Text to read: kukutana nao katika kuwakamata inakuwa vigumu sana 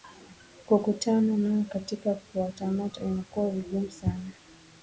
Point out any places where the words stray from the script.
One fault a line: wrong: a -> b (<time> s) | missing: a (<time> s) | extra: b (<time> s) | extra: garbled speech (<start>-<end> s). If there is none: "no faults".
no faults